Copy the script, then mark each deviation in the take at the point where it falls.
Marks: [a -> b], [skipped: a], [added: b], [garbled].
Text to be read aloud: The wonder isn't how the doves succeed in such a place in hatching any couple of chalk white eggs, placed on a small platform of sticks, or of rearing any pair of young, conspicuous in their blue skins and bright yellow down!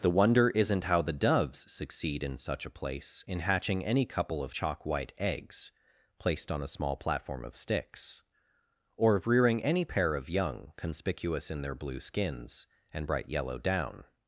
The wonder isn't how the doves succeed in such a place in hatching any couple of chalk white eggs, placed on a small platform of sticks, or of rearing any pair of young, conspicuous in their blue skins and bright yellow down!